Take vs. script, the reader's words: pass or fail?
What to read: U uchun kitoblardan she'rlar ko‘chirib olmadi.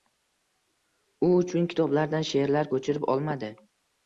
pass